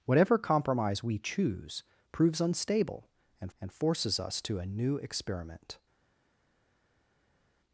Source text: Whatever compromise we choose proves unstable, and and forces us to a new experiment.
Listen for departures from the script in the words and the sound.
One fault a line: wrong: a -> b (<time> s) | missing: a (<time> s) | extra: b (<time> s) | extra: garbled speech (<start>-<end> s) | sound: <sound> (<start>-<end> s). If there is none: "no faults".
no faults